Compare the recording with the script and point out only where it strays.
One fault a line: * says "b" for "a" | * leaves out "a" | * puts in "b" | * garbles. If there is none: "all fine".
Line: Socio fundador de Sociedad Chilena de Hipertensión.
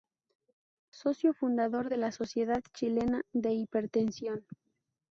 * puts in "la"